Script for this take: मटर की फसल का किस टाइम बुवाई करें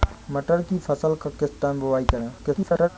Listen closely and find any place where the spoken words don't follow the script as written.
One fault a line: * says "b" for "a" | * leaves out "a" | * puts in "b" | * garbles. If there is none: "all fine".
* garbles